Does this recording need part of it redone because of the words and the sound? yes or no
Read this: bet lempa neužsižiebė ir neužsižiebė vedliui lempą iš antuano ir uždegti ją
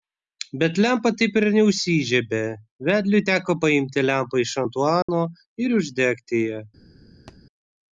yes